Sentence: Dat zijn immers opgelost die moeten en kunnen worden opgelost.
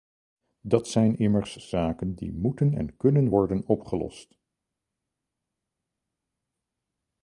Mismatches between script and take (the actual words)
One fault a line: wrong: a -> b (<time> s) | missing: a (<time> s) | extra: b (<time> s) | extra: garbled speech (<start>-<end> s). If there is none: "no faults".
wrong: opgelost -> zaken (1.5 s)